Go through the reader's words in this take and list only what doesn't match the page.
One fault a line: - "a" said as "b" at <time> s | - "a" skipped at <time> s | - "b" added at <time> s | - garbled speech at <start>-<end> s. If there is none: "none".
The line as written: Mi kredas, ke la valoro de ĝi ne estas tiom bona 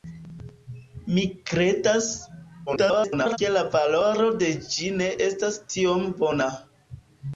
- garbled speech at 2.7-3.4 s